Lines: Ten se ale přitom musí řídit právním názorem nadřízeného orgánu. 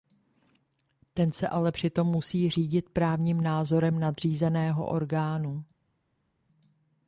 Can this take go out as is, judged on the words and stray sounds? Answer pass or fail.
pass